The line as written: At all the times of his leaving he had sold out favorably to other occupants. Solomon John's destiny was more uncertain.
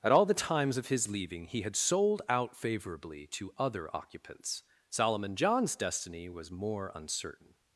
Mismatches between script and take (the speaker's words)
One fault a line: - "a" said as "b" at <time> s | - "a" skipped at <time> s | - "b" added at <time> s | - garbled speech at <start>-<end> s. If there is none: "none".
none